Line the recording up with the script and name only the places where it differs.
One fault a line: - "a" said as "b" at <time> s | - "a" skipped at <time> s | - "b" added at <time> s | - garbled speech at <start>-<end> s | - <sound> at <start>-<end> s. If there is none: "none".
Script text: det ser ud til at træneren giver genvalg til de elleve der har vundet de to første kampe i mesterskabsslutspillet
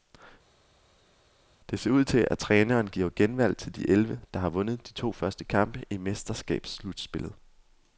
none